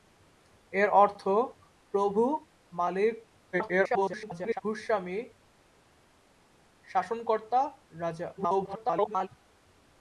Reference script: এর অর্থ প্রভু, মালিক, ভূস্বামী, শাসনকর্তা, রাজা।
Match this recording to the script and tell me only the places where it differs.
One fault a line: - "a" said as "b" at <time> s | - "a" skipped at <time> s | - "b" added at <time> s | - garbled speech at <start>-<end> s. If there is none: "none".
- garbled speech at 3.5-4.6 s
- garbled speech at 8.4-9.3 s